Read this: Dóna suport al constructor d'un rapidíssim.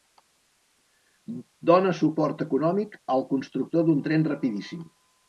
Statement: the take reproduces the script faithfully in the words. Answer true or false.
false